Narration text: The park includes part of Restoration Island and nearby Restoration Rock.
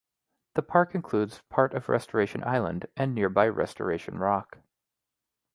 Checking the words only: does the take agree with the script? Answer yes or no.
yes